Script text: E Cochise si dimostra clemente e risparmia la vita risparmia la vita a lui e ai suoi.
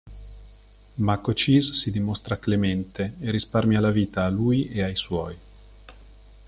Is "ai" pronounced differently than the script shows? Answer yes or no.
no